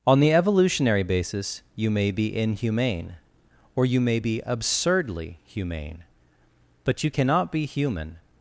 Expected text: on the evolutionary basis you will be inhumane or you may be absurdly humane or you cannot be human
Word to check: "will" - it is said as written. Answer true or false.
false